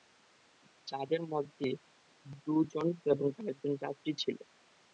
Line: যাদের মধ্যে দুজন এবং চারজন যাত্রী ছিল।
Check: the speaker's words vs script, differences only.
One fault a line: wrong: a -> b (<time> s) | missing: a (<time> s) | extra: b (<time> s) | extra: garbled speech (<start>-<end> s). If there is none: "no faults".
no faults